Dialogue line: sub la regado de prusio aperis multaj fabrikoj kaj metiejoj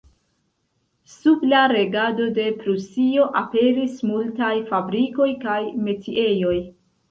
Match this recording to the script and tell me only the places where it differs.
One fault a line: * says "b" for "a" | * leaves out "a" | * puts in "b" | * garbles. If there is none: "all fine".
all fine